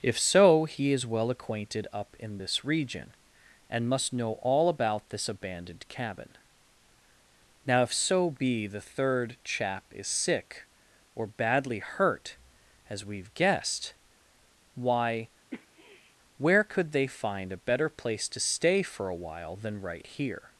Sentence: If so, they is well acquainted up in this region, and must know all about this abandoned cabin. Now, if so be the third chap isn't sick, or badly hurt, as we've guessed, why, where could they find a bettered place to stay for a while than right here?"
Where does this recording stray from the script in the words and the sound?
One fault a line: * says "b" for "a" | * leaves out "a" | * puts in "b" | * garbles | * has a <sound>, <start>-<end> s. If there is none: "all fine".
* says "he" for "they"
* says "is" for "isn't"
* has a sniff, 15.5-16.2 s
* says "better" for "bettered"